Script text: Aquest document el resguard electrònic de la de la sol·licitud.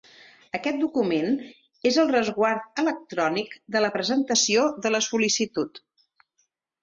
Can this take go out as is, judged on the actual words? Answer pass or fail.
fail